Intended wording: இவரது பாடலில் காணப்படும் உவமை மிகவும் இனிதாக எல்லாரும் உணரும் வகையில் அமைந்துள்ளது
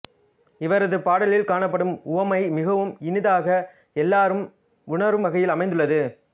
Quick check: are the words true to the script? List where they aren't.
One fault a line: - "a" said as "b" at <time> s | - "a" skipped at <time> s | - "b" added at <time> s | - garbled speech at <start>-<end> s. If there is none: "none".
none